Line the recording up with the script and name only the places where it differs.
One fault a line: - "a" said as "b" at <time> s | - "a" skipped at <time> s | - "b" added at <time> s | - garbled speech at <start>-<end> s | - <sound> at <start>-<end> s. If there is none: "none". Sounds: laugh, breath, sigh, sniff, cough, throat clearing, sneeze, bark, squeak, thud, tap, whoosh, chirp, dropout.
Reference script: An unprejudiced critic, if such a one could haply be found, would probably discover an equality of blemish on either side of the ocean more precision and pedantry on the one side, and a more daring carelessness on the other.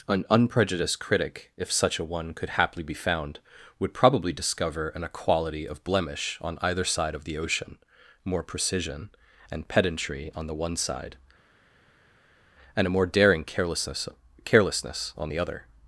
- "carelessness" added at 14.4 s